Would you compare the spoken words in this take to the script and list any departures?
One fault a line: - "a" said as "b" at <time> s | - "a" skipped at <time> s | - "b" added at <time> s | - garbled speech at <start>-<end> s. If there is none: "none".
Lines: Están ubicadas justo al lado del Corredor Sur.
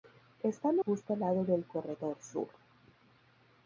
- "ubicadas" skipped at 0.8 s